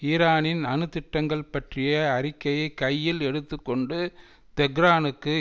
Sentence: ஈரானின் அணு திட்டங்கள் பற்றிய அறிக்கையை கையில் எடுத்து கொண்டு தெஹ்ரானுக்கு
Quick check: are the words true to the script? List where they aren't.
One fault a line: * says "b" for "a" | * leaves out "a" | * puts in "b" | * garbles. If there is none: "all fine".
all fine